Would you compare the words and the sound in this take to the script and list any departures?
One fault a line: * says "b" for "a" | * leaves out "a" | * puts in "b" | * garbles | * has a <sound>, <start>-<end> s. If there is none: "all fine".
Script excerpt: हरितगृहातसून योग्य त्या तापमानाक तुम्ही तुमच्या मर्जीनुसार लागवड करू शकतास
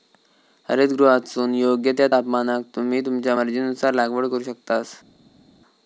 all fine